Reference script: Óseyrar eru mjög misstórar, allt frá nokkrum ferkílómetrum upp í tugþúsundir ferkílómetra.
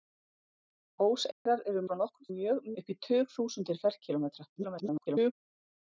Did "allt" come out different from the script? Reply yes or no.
yes